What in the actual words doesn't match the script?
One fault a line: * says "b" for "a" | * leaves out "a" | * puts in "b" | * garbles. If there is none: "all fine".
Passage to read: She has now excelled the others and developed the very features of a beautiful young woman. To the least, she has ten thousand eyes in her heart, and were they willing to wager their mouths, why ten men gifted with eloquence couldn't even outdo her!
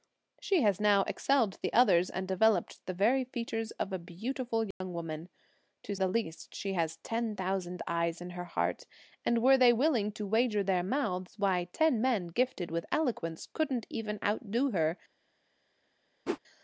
all fine